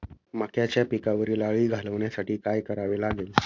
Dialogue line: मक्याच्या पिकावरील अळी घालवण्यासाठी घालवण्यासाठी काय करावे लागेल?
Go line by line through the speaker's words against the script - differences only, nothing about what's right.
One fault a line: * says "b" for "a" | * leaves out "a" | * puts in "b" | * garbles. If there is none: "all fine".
* leaves out "घालवण्यासाठी"